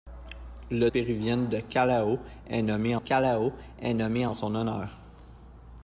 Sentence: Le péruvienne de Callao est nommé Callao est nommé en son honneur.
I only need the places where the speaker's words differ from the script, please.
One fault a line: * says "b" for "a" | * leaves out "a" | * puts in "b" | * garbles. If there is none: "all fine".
all fine